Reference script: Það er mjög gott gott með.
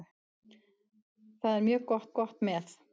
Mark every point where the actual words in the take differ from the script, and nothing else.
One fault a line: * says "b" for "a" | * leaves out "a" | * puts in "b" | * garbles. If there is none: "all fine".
all fine